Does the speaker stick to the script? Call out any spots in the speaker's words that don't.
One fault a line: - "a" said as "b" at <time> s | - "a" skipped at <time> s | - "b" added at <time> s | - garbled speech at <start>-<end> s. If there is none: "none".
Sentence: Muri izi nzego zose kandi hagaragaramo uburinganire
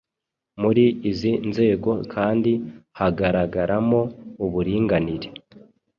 - "zose" skipped at 1.9 s